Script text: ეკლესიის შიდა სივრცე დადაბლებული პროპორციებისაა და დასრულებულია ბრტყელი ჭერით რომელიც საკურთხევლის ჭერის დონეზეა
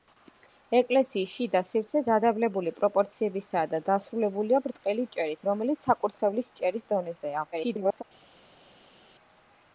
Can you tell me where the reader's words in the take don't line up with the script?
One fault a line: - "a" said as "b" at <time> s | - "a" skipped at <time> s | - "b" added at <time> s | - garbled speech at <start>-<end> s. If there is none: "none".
- garbled speech at 7.5-8.0 s